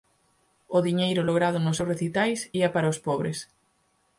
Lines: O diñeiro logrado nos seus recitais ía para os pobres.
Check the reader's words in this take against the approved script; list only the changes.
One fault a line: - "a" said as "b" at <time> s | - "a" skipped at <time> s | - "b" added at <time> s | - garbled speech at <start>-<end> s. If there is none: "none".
none